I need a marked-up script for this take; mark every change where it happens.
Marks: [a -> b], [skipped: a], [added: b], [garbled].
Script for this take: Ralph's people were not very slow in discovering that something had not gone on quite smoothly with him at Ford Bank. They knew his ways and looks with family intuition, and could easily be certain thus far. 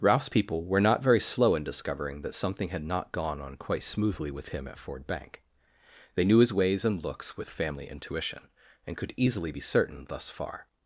Ralph's people were not very slow in discovering that something had not gone on quite smoothly with him at Ford Bank. They knew his ways and looks with family intuition, and could easily be certain thus far.